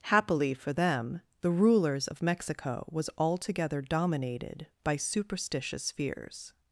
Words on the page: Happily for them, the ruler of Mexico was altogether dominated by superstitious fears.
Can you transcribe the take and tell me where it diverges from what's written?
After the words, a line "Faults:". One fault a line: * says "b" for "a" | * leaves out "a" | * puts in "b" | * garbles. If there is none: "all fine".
Happily for them, the rulers of Mexico was altogether dominated by superstitious fears.
Faults:
* says "rulers" for "ruler"